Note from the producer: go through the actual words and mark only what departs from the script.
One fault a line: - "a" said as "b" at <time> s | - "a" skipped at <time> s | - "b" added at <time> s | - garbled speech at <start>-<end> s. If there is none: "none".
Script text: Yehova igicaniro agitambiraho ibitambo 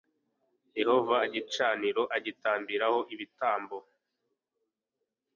none